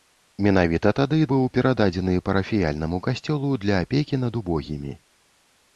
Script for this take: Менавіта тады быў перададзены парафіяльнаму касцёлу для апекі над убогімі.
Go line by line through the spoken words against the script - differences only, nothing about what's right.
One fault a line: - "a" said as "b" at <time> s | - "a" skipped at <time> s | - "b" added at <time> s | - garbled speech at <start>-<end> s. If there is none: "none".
none